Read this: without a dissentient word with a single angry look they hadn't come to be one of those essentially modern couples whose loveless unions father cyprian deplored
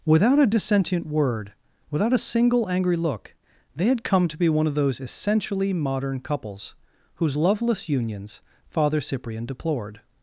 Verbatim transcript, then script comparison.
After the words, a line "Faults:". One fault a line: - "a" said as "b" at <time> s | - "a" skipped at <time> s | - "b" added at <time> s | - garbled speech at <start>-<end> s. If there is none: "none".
without a dissentient word without a single angry look they had come to be one of those essentially modern couples whose loveless unions father cyprian deplored
Faults:
- "with" said as "without" at 1.9 s
- "hadn't" said as "had" at 3.9 s